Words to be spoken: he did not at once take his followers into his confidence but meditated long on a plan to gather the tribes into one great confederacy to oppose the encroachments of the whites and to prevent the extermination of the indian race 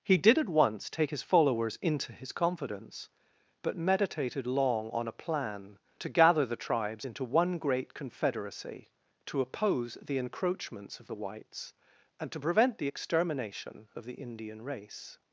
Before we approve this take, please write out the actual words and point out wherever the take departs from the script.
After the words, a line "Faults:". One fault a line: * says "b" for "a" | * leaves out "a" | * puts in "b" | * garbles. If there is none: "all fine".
he did at once take his followers into his confidence but meditated long on a plan to gather the tribes into one great confederacy to oppose the encroachments of the whites and to prevent the extermination of the indian race
Faults:
* leaves out "not"